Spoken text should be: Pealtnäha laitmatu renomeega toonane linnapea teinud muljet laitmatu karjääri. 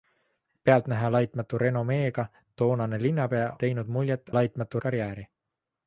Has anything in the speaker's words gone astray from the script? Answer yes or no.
no